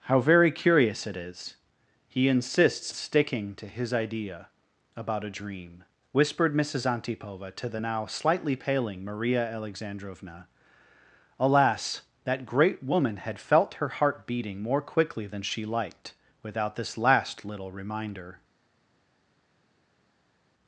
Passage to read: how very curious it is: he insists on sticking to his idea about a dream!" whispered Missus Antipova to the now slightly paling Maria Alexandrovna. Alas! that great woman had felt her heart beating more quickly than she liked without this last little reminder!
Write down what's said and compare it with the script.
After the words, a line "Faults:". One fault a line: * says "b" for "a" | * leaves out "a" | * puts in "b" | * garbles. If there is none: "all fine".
how very curious it is: he insists sticking to his idea about a dream!" whispered Missus Antipova to the now slightly paling Maria Alexandrovna. Alas! that great woman had felt her heart beating more quickly than she liked without this last little reminder!
Faults:
* leaves out "on"